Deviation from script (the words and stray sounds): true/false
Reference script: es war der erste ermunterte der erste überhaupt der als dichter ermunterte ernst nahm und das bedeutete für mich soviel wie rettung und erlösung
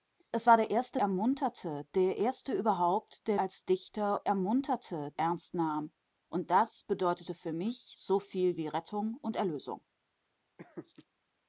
true